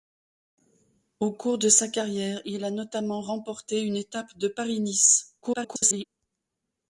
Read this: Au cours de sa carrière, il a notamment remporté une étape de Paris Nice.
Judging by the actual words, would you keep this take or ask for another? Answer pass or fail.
fail